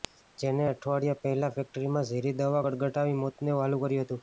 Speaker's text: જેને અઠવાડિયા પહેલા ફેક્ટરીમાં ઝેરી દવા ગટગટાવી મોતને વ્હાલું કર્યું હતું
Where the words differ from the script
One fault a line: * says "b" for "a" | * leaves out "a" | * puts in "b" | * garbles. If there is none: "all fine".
all fine